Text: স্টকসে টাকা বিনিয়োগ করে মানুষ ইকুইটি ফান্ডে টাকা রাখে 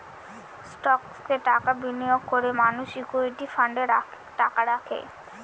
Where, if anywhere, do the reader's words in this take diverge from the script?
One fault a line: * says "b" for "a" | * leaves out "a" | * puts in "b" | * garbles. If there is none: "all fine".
all fine